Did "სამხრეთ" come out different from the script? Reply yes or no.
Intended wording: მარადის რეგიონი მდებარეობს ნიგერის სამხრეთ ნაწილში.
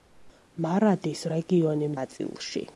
yes